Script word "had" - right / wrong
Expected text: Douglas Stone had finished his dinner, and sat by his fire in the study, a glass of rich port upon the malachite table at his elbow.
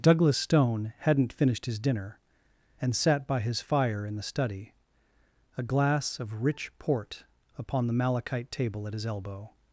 wrong